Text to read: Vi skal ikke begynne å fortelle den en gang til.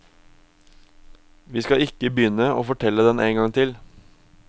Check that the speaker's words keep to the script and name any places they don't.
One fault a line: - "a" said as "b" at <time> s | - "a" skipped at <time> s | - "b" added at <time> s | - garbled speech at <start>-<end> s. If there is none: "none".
none